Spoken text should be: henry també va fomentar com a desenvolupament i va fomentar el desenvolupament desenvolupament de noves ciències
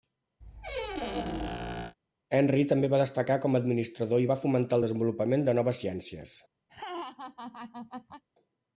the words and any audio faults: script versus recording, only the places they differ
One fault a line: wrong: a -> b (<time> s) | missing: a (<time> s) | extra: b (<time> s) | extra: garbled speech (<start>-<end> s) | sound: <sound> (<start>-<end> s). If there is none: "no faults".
sound: squeak (0.4-2.0 s)
wrong: fomentar -> destacar (3.0 s)
wrong: desenvolupament -> administrador (3.6 s)
missing: desenvolupament (5.5 s)
sound: laugh (6.7-8.2 s)